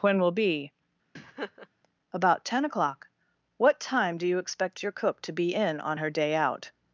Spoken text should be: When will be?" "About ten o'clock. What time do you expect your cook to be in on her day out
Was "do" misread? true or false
false